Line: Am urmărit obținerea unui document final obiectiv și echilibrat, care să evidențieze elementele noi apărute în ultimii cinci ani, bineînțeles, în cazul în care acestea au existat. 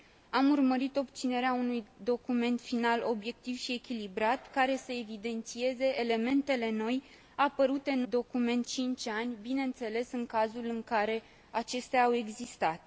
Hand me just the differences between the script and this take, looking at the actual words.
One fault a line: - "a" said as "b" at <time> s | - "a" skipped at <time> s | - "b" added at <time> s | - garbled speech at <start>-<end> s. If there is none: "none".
- "ultimii" said as "document" at 8.1 s